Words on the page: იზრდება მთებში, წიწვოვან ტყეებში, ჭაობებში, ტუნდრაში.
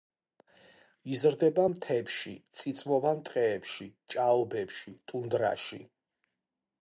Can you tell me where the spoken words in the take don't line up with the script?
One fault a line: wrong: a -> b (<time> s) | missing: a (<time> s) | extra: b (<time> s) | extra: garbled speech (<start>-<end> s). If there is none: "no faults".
no faults